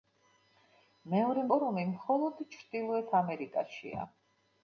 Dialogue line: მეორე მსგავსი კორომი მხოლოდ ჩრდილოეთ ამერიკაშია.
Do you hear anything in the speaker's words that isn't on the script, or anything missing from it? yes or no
yes